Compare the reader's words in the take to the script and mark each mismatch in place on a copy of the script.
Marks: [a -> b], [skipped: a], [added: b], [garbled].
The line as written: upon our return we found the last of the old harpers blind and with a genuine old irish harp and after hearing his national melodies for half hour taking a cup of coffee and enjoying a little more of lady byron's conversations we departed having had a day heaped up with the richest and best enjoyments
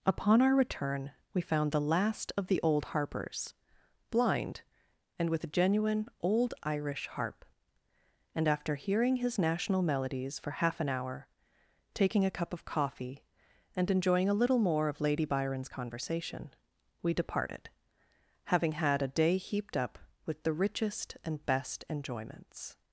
upon our return we found the last of the old harpers blind and with a genuine old irish harp and after hearing his national melodies for half [added: an] hour taking a cup of coffee and enjoying a little more of lady byron's [conversations -> conversation] we departed having had a day heaped up with the richest and best enjoyments